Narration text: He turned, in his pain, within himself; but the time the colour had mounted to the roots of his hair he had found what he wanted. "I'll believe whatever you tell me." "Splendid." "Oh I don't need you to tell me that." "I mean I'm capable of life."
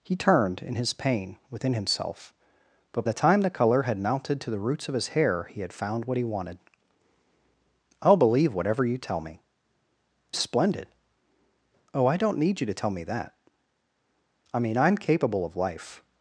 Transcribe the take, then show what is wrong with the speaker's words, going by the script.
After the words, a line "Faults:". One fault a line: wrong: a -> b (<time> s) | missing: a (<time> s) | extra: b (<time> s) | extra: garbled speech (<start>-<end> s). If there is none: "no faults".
He turned, in his pain, within himself; but the time the colour had mounted to the roots of his hair he had found what he wanted. "I'll believe whatever you tell me." "Splendid." "Oh I don't need you to tell me that." "I mean I'm capable of life."
Faults:
no faults